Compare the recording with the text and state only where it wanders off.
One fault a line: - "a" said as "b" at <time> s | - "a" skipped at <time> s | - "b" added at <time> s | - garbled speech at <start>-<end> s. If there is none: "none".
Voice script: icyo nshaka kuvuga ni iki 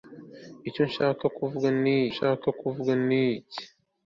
- "nshaka kuvuga ni" added at 2.1 s